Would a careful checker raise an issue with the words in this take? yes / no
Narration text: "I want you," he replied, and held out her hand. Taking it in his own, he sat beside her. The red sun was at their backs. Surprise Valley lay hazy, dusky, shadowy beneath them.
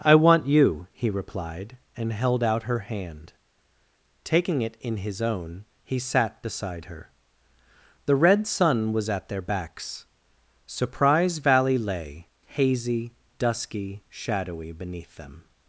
no